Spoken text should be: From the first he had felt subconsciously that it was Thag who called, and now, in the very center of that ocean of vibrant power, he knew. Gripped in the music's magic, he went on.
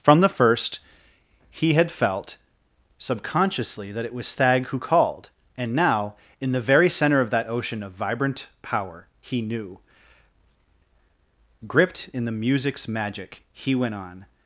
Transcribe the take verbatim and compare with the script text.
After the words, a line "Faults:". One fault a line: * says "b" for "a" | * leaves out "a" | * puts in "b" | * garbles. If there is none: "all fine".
From the first he had felt subconsciously that it was Thag who called, and now, in the very center of that ocean of vibrant power, he knew. Gripped in the music's magic, he went on.
Faults:
all fine